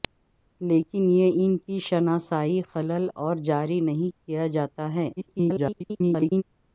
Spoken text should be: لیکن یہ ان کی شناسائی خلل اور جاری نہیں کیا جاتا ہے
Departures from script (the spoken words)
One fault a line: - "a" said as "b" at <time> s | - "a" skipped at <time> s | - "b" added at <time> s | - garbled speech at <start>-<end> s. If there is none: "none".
- garbled speech at 5.2-6.4 s